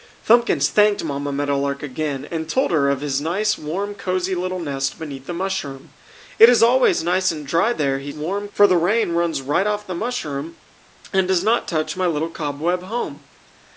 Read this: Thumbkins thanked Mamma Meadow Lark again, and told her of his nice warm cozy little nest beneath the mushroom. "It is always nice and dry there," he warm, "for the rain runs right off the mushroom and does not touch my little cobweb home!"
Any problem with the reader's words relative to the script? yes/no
no